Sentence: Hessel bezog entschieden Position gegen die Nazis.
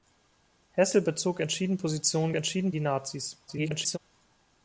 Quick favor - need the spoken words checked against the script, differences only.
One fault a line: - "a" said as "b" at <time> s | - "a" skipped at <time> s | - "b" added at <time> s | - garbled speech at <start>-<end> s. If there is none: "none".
- "gegen" said as "entschieden" at 2.3 s
- garbled speech at 3.5-4.0 s